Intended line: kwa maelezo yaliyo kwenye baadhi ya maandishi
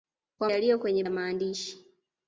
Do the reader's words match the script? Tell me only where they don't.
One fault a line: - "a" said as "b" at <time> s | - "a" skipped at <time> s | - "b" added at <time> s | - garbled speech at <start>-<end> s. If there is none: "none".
- "maelezo" skipped at 0.5 s
- "baadhi" skipped at 1.0 s